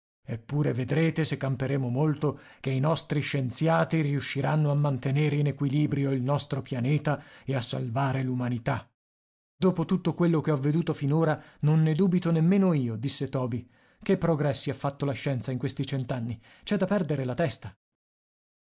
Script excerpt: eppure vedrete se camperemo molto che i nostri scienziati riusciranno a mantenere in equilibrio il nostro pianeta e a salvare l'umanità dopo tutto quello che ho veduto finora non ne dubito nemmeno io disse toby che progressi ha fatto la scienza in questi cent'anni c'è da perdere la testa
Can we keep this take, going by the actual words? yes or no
yes